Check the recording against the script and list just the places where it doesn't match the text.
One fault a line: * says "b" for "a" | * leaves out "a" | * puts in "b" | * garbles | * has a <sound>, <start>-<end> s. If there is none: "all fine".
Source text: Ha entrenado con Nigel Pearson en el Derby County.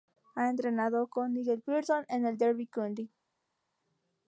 all fine